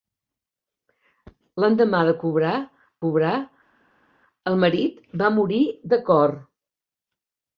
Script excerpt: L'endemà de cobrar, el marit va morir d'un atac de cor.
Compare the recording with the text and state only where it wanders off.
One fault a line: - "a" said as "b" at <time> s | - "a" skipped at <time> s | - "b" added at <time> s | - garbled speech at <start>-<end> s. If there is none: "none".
- "cobrar" added at 3.0 s
- "d'un atac" skipped at 5.6 s